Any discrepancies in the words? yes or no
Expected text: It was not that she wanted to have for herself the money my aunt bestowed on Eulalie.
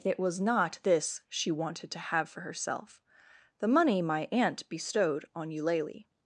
yes